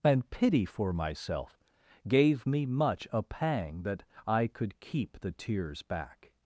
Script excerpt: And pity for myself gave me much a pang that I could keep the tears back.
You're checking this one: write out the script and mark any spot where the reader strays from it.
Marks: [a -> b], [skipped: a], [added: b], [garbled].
And pity for myself gave me much a pang that I could keep the tears back.